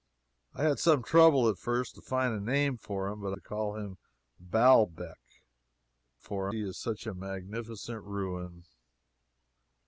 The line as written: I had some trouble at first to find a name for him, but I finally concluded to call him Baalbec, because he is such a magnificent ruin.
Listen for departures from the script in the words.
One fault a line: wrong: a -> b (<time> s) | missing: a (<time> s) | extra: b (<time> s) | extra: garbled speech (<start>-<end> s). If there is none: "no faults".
missing: I finally concluded (3.4 s)
wrong: because -> for (6.2 s)